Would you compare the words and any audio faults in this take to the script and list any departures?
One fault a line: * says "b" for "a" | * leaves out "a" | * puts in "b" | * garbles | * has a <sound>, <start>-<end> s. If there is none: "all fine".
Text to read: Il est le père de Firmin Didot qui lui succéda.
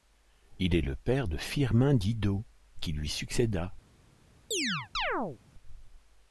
* has a chirp, 4.5-5.4 s